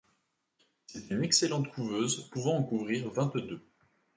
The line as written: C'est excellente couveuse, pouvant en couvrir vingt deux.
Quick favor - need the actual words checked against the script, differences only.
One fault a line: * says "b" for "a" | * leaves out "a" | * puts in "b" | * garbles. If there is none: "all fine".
* puts in "une"